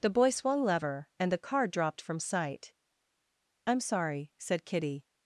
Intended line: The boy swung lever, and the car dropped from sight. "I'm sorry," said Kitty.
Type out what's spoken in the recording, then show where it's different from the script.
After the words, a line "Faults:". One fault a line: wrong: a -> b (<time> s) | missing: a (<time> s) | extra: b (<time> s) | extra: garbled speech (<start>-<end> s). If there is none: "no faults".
The boy swung lever, and the car dropped from sight. "I'm sorry," said Kitty.
Faults:
no faults